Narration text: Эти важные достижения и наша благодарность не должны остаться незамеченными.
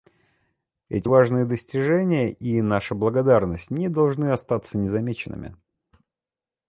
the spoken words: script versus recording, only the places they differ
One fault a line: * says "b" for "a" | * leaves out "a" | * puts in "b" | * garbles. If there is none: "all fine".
all fine